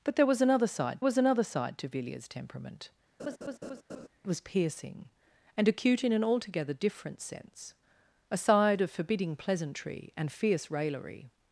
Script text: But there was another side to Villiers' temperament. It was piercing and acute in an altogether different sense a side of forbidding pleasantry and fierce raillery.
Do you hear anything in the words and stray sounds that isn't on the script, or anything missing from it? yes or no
yes